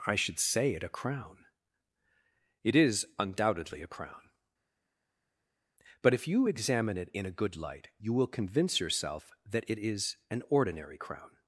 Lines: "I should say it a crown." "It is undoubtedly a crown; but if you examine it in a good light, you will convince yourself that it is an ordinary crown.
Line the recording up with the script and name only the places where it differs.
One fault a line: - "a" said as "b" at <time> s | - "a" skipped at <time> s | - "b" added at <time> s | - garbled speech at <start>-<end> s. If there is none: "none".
none